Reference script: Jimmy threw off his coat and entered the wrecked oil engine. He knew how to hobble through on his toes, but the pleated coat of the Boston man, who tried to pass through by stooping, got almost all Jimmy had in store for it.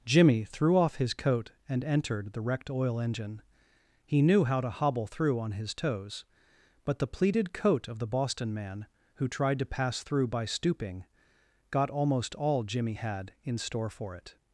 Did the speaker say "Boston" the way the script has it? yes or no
yes